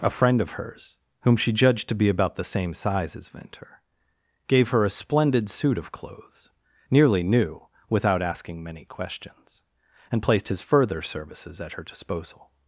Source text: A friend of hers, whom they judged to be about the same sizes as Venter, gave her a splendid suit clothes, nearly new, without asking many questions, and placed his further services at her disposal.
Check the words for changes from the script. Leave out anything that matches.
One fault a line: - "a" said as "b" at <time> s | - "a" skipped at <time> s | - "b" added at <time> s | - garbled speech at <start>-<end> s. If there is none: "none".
- "they" said as "she" at 1.4 s
- "sizes" said as "size" at 2.7 s
- "of" added at 5.8 s